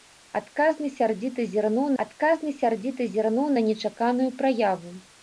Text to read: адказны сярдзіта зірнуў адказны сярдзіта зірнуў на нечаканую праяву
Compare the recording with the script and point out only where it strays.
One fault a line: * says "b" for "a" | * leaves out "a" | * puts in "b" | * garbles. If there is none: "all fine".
all fine